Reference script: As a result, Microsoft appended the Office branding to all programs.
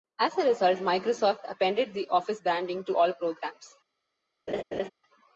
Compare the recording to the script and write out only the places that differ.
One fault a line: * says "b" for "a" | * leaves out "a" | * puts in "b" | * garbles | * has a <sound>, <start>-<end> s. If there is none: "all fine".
* has a laugh, 4.5-4.9 s